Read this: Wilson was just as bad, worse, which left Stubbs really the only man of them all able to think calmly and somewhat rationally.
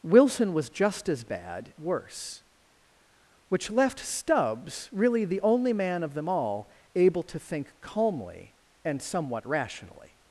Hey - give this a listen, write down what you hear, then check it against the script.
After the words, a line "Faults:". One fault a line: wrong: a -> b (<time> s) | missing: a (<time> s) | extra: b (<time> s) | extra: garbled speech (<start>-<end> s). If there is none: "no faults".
Wilson was just as bad, worse, which left Stubbs really the only man of them all able to think calmly and somewhat rationally.
Faults:
no faults